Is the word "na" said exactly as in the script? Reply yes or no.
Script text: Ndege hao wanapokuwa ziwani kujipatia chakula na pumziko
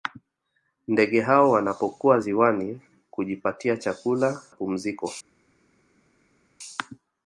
no